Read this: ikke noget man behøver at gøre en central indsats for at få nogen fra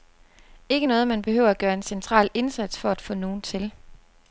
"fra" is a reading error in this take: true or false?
true